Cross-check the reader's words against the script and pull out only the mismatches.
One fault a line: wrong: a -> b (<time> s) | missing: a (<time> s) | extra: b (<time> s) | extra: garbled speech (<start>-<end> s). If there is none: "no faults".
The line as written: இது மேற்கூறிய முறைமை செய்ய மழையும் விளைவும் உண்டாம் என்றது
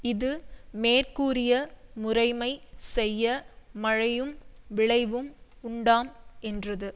no faults